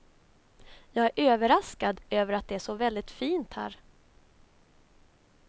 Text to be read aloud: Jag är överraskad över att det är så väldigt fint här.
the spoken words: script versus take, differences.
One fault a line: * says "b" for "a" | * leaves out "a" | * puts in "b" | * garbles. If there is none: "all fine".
all fine